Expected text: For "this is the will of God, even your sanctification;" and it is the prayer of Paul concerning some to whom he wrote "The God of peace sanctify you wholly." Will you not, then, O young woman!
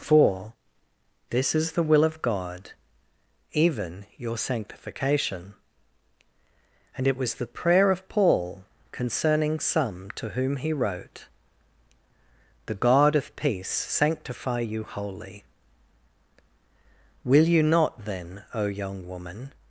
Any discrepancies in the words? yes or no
yes